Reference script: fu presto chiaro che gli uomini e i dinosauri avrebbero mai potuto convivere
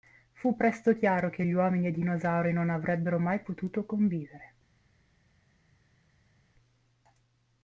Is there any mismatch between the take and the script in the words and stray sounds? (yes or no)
yes